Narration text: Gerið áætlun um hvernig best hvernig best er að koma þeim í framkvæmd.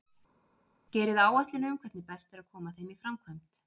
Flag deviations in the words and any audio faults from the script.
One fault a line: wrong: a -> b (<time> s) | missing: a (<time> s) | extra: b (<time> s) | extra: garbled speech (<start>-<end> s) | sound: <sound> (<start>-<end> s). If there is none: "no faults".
missing: hvernig best (2.3 s)